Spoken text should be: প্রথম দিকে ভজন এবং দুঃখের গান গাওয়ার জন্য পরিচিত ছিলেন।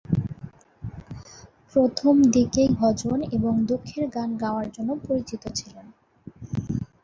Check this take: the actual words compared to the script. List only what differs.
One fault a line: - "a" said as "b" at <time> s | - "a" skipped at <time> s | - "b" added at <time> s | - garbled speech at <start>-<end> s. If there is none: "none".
none